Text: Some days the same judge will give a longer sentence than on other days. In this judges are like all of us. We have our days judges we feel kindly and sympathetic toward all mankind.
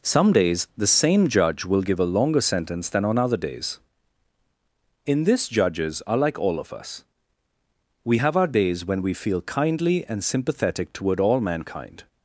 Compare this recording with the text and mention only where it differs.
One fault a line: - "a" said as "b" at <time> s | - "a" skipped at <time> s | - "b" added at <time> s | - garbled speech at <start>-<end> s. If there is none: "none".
- "judges" said as "when" at 8.9 s